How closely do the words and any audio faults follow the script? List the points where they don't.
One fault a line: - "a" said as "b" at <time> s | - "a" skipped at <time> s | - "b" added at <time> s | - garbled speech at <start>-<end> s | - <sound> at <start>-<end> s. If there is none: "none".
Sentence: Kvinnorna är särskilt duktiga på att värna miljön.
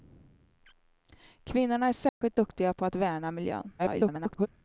- dropout at 2.1-2.2 s
- garbled speech at 3.8-4.5 s